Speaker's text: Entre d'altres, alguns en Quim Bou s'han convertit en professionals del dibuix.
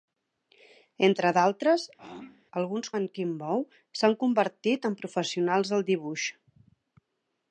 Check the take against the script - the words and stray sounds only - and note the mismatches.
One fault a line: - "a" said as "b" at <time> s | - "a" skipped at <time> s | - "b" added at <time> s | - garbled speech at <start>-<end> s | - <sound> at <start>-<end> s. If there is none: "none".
- throat clearing at 2.0-2.5 s